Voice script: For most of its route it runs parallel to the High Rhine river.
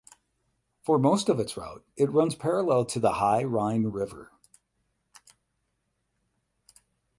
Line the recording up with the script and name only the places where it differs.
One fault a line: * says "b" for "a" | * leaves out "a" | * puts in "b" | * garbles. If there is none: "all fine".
all fine